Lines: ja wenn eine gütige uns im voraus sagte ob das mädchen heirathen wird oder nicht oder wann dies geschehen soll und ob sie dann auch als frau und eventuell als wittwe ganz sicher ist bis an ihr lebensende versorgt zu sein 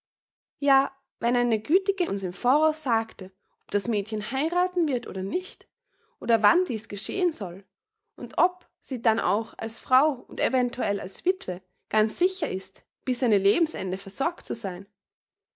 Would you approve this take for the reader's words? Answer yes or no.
yes